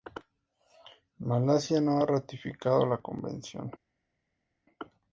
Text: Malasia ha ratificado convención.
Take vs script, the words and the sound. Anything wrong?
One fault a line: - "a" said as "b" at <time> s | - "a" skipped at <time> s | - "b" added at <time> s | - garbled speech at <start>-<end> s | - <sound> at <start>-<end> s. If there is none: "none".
- "no" added at 1.8 s
- "la" added at 2.8 s